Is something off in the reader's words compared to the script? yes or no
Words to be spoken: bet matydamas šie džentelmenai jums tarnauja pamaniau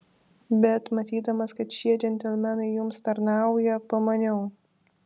yes